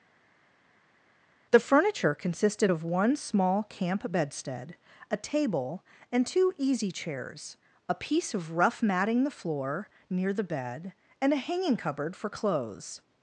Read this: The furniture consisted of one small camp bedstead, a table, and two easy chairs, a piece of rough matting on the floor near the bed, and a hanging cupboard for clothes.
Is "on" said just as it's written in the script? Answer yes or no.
no